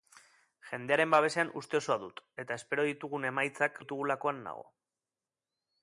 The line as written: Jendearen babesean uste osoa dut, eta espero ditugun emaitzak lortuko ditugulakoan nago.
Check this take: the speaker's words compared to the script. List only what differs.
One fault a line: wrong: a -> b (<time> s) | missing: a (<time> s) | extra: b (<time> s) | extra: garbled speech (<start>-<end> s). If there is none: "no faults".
missing: lortuko (3.8 s)